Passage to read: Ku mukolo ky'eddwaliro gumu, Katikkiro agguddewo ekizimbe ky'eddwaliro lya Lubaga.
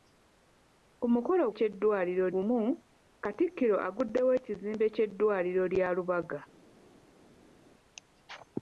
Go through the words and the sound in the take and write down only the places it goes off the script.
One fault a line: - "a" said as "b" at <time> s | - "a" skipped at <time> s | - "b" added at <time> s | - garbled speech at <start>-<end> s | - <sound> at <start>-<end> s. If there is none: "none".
none